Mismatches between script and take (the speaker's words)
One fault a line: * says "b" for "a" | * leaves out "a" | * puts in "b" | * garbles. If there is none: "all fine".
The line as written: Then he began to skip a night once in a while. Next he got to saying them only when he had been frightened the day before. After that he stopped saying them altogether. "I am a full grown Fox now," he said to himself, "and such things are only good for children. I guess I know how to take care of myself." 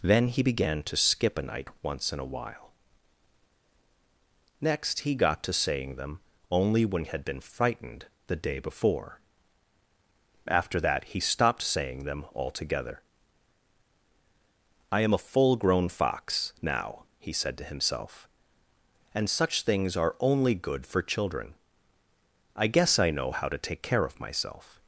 * leaves out "he"